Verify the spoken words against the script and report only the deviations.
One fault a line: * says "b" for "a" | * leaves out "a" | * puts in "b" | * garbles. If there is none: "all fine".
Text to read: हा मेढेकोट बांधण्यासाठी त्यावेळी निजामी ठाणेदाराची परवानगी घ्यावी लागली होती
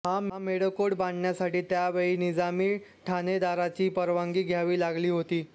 all fine